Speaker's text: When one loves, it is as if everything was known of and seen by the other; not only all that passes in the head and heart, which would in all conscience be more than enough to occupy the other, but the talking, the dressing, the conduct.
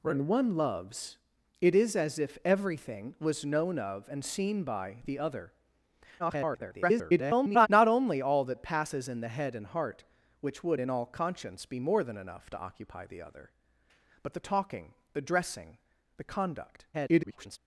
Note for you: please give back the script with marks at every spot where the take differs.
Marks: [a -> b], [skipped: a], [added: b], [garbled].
When one loves, it is as if everything was known of and seen by the other; [garbled] not only all that passes in the head and heart, which would in all conscience be more than enough to occupy the other, but the talking, the dressing, the conduct. [garbled]